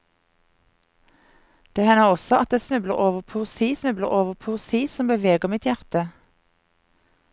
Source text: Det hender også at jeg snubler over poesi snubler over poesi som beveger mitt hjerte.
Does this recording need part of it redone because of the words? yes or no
no